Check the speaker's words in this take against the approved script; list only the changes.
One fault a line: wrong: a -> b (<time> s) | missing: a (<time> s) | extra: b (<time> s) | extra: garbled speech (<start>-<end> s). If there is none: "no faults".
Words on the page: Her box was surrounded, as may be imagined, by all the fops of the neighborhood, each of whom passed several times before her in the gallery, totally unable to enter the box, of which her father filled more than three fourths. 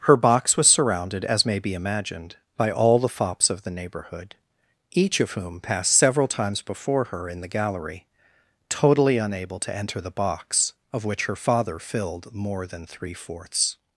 no faults